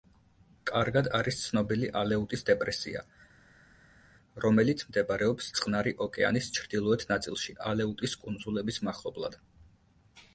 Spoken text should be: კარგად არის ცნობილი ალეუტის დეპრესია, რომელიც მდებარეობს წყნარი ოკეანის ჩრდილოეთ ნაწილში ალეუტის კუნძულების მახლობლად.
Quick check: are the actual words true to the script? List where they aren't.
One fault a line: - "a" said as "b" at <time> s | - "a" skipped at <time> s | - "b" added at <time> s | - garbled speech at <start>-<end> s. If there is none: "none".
none